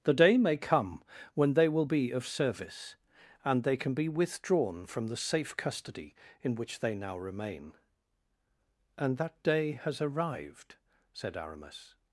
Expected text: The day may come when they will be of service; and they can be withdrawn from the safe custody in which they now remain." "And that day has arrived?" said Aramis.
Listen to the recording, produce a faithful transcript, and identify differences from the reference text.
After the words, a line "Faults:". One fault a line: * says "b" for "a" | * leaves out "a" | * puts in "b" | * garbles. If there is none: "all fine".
The day may come when they will be of service; and they can be withdrawn from the safe custody in which they now remain." "And that day has arrived?" said Aramis.
Faults:
all fine